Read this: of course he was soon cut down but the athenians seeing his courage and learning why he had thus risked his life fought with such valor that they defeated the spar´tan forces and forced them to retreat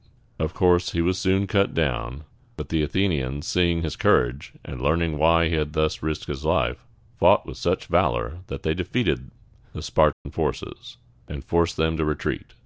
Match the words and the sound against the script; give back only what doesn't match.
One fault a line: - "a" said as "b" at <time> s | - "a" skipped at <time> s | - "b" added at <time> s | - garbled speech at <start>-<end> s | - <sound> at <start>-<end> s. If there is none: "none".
- dropout at 10.1-10.3 s